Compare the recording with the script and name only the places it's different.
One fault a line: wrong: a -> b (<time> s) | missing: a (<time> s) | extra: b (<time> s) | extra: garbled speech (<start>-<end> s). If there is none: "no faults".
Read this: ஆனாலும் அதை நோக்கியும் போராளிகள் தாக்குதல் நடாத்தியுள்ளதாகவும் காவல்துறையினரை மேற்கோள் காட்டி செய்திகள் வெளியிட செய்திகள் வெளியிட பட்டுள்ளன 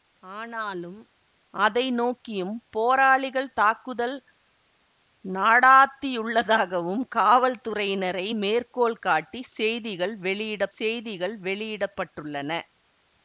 no faults